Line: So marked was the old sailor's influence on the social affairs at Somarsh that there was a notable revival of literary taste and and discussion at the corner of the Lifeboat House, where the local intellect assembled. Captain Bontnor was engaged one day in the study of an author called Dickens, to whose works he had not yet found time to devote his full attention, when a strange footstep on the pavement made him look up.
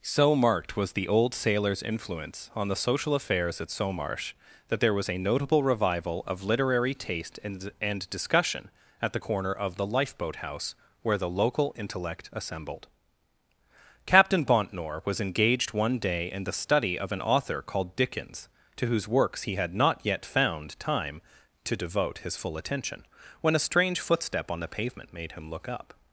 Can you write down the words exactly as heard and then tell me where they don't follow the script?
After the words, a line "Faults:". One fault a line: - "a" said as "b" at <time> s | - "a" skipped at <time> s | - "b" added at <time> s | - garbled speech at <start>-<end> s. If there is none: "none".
So marked was the old sailor's influence on the social affairs at Somarsh that there was a notable revival of literary taste and and discussion at the corner of the Lifeboat House, where the local intellect assembled. Captain Bontnor was engaged one day in the study of an author called Dickens, to whose works he had not yet found time to devote his full attention, when a strange footstep on the pavement made him look up.
Faults:
none